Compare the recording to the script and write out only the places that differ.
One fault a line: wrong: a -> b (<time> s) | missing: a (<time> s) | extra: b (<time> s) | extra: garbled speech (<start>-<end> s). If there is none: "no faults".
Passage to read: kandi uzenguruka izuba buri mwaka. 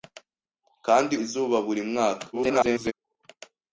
missing: uzenguruka (1.1 s)
extra: garbled speech (2.3-2.9 s)